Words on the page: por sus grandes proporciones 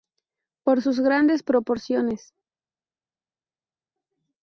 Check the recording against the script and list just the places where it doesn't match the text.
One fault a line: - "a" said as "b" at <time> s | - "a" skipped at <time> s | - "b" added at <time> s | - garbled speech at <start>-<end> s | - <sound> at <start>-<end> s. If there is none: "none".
none